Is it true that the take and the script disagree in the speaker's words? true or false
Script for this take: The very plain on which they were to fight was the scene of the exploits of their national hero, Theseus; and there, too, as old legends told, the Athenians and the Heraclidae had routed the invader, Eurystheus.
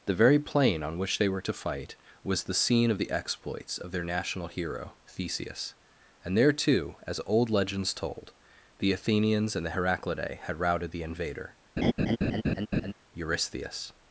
false